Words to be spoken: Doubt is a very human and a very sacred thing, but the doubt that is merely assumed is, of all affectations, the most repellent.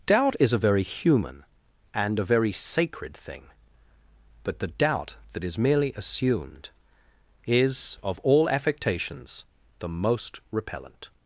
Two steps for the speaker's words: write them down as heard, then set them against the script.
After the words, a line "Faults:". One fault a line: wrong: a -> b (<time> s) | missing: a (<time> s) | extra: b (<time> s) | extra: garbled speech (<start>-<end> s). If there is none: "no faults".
Doubt is a very human and a very sacred thing, but the doubt that is merely assumed is, of all affectations, the most repellent.
Faults:
no faults